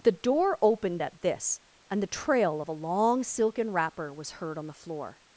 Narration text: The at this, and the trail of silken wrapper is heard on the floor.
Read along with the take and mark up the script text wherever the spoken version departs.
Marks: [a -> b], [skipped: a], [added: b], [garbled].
The [added: door opened] at this, and the trail of [added: a long] silken wrapper [is -> was] heard on the floor.